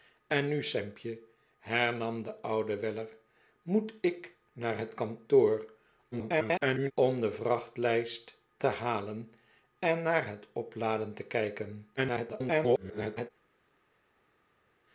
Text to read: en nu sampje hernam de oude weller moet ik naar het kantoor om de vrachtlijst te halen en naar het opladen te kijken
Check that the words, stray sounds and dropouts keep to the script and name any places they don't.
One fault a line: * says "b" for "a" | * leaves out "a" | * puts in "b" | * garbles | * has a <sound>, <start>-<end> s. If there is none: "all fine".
* garbles
* garbles